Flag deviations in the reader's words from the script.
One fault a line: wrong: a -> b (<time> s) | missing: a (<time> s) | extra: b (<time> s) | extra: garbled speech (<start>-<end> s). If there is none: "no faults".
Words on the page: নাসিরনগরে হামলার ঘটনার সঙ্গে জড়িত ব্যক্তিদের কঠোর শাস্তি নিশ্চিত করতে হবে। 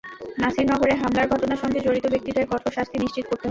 no faults